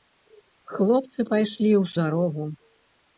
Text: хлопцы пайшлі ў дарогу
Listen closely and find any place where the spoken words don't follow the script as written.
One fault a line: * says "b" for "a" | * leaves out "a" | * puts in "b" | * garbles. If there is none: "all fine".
all fine